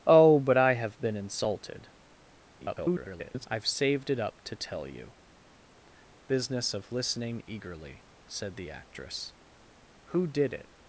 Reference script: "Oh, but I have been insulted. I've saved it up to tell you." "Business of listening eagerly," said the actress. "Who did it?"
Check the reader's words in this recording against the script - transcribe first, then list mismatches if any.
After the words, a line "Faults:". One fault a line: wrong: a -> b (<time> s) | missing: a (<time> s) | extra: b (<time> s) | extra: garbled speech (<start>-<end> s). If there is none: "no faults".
"Oh, but I have been insulted. [garbled] I've saved it up to tell you." "Business of listening eagerly," said the actress. "Who did it?"
Faults:
extra: garbled speech (2.6-3.5 s)